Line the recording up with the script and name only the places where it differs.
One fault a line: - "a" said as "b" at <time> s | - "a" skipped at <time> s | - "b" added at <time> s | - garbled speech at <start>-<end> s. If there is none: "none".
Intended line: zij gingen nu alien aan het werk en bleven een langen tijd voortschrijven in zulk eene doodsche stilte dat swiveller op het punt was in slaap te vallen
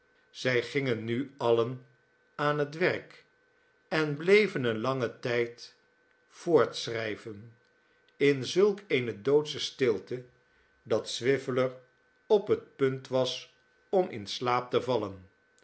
- "om" added at 13.9 s